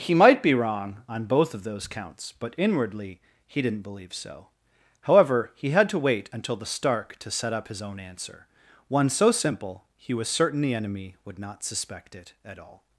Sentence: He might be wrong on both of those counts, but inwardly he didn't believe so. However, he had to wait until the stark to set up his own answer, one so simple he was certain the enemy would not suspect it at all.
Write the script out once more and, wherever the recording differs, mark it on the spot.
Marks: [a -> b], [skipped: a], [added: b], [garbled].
He might be wrong on both of those counts, but inwardly he didn't believe so. However, he had to wait until the stark to set up his own answer, one so simple he was certain the enemy would not suspect it at all.